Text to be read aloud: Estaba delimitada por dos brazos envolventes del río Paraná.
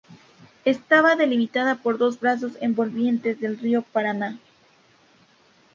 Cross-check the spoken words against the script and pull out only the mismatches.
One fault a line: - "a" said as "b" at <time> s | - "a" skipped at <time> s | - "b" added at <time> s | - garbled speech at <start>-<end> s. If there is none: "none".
none